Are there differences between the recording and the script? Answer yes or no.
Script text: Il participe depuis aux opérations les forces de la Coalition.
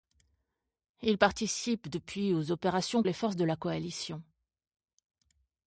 no